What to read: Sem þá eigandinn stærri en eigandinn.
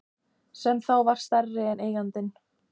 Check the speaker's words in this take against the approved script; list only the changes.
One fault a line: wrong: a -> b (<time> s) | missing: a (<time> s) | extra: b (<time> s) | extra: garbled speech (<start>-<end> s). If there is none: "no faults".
wrong: eigandinn -> var (1.1 s)